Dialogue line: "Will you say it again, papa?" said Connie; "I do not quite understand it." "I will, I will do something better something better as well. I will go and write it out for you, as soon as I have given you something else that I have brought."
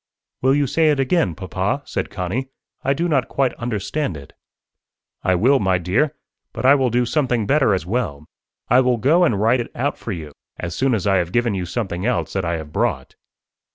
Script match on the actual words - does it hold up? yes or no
no